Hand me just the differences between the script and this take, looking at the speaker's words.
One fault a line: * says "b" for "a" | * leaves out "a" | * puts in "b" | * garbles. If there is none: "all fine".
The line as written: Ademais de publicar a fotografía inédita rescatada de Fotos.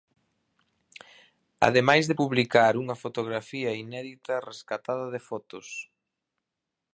* says "unha" for "a"